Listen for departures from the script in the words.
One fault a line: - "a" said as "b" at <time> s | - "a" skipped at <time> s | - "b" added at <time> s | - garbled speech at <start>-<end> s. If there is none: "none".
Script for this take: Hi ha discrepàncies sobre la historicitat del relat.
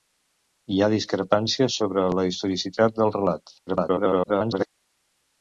- garbled speech at 3.7-4.7 s